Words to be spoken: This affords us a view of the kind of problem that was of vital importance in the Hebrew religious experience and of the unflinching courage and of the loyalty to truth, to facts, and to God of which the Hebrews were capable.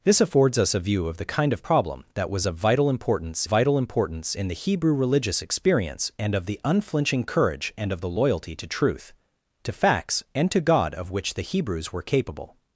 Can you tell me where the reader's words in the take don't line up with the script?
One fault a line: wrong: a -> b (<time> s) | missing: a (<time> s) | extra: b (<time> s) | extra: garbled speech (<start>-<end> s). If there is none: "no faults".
extra: vital importance (3.4 s)